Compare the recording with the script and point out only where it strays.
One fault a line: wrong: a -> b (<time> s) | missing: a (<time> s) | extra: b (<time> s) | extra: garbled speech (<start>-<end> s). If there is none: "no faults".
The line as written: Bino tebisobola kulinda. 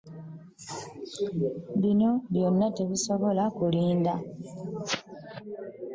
extra: byonna (2.3 s)